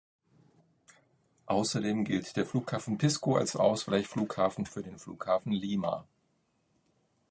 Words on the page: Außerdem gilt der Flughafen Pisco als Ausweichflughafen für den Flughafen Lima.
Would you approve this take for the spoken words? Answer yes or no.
yes